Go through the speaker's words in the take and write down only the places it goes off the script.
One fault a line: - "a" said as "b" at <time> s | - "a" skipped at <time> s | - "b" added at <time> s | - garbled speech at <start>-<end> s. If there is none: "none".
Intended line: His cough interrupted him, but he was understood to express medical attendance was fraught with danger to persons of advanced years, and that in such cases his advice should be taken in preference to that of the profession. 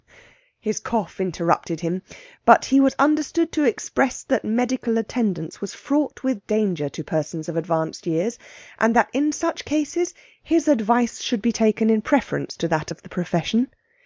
- "that" added at 4.2 s